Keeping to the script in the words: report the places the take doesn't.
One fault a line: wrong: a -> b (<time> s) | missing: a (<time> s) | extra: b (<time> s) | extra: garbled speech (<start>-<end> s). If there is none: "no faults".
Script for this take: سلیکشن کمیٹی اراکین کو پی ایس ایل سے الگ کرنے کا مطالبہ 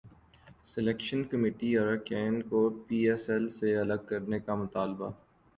no faults